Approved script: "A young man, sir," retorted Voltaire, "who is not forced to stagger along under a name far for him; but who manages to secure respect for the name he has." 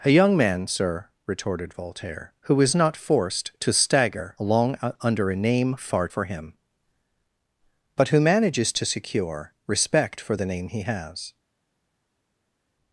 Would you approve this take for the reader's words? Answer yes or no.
yes